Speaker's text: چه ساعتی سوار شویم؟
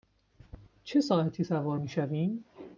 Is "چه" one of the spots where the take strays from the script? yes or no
no